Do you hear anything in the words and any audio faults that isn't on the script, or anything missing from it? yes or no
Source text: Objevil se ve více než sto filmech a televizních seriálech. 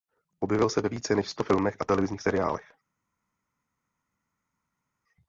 no